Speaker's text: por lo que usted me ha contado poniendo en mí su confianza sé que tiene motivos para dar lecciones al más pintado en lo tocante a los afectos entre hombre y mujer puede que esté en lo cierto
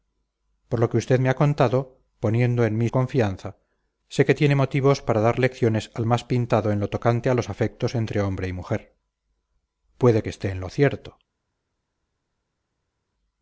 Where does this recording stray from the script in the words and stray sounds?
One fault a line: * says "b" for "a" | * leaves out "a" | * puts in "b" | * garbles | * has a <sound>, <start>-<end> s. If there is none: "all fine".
* leaves out "su"